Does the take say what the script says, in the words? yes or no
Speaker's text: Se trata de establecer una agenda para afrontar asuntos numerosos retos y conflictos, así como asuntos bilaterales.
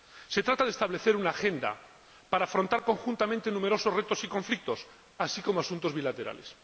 no